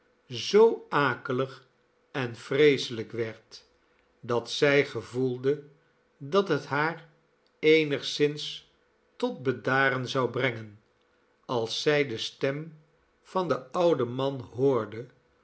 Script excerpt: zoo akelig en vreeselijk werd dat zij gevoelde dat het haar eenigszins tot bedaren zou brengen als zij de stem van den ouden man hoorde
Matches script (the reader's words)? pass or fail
pass